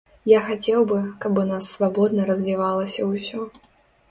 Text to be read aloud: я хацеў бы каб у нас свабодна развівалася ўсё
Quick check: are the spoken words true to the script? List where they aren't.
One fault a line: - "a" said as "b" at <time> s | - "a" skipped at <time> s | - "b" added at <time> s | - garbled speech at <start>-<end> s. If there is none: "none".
none